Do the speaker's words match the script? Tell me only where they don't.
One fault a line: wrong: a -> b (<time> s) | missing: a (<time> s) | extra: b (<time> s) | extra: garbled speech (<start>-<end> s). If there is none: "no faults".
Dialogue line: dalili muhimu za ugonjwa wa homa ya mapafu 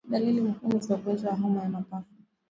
no faults